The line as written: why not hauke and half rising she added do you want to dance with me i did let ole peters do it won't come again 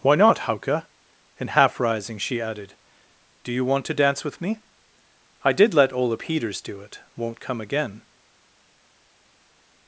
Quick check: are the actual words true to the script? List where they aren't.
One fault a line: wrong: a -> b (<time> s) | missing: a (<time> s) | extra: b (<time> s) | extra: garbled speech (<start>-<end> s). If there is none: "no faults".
no faults